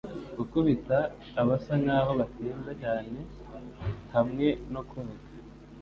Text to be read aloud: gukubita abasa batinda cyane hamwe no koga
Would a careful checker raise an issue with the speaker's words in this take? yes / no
yes